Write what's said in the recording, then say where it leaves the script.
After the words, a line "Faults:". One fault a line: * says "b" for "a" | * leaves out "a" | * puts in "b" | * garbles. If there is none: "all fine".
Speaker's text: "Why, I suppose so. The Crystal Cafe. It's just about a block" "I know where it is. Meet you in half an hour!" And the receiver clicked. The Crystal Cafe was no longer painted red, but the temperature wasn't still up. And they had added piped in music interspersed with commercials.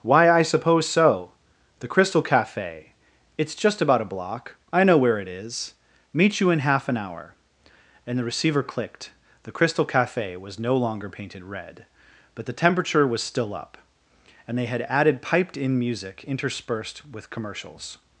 "Why, I suppose so. The Crystal Cafe. It's just about a block" "I know where it is. Meet you in half an hour!" And the receiver clicked. The Crystal Cafe was no longer painted red, but the temperature was still up. And they had added piped in music interspersed with commercials.
Faults:
* says "was" for "wasn't"